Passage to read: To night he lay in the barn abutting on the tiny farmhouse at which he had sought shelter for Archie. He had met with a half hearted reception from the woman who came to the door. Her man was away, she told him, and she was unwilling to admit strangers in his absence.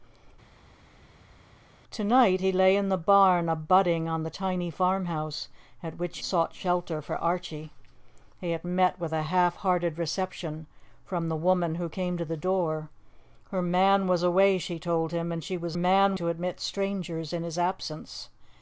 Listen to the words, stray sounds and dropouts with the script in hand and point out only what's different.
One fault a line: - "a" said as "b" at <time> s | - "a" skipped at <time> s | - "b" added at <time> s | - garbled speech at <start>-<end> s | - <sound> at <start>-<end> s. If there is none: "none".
- "he had" skipped at 6.2 s
- "unwilling" said as "man" at 15.7 s